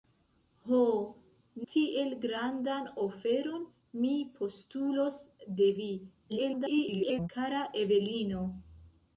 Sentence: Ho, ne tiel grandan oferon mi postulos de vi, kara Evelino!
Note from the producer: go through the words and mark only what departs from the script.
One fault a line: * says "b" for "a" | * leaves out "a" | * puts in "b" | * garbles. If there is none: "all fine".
* leaves out "ne"
* garbles